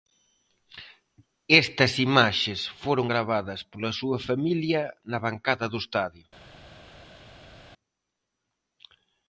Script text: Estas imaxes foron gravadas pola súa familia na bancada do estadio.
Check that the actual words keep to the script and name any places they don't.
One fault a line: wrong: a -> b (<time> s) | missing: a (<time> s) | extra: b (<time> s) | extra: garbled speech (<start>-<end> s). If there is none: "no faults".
no faults